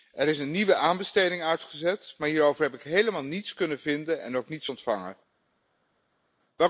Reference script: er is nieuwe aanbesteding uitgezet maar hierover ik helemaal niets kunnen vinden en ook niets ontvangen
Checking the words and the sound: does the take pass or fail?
fail